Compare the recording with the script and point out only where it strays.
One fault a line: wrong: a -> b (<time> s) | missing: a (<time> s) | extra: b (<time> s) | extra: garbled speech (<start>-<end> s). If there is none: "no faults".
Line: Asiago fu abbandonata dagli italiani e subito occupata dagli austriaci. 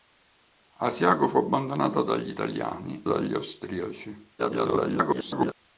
missing: e subito occupata (3.0 s)
extra: garbled speech (4.4-5.5 s)